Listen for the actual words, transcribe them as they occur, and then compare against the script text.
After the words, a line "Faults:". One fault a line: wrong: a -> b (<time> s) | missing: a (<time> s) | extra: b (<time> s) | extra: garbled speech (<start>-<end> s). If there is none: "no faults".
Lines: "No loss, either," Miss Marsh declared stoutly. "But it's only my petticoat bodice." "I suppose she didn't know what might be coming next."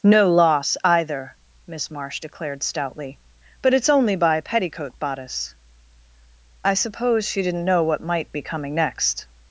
"No loss, either," Miss Marsh declared stoutly. "But it's only by petticoat bodice." "I suppose she didn't know what might be coming next."
Faults:
wrong: my -> by (4.2 s)